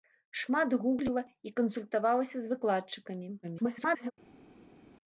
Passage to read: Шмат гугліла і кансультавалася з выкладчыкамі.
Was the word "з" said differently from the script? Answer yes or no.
no